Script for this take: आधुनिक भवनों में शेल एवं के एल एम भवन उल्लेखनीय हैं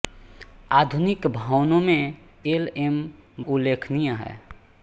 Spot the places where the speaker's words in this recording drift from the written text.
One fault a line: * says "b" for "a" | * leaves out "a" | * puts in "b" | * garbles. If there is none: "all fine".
* leaves out "शेल एवं के"
* leaves out "भवन"